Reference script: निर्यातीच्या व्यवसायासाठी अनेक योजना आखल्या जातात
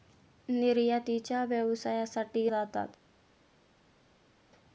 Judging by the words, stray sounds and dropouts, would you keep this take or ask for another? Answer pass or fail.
fail